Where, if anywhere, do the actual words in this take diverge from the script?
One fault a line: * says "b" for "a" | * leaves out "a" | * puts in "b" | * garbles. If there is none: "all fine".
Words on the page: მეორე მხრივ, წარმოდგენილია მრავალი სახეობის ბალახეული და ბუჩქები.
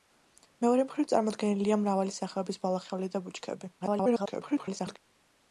* garbles